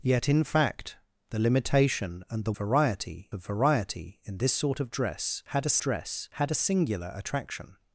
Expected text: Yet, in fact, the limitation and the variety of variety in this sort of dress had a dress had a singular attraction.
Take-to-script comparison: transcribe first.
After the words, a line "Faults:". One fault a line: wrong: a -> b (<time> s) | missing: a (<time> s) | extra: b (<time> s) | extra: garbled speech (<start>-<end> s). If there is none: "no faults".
Yet, in fact, the limitation and the variety of variety in this sort of dress had a dress had a singular attraction.
Faults:
no faults